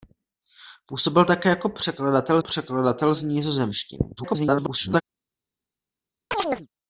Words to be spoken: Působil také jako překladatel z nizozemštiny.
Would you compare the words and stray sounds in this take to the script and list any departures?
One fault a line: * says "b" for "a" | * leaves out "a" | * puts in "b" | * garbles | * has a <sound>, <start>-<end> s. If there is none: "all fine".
* puts in "překladatel"
* garbles
* has a chirp, 6.3-6.7 s